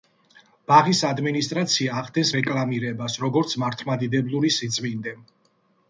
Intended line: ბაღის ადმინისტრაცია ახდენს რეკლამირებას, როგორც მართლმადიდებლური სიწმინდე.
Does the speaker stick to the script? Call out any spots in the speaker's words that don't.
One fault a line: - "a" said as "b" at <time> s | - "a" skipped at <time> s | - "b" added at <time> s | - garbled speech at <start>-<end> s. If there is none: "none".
none